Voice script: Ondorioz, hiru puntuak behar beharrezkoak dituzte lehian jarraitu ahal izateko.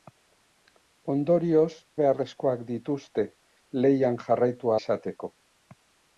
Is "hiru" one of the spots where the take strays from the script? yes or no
yes